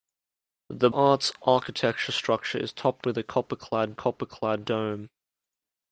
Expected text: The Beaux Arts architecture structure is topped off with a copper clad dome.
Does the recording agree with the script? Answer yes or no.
no